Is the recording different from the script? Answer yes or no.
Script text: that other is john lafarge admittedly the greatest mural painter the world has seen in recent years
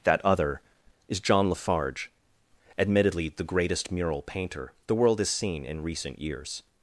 no